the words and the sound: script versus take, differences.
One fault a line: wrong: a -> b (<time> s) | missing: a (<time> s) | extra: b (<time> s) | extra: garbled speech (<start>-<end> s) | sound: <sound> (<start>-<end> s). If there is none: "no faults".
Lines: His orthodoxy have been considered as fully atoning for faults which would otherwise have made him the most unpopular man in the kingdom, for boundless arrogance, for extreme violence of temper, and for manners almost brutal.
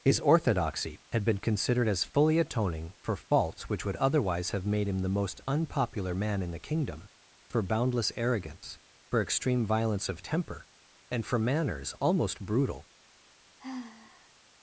wrong: have -> had (1.1 s)
sound: sigh (13.6-14.3 s)